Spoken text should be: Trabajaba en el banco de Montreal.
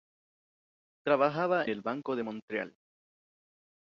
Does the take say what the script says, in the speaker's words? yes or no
no